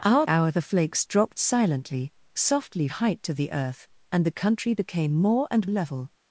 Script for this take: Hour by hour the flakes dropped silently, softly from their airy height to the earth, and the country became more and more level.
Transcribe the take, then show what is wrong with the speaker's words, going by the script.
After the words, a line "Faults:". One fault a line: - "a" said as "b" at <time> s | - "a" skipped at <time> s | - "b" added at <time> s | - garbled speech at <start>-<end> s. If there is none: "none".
Hour hour the flakes dropped silently, softly height to the earth, and the country became more and level.
Faults:
- "by" skipped at 0.2 s
- "from their airy" skipped at 2.9 s
- "more" skipped at 5.7 s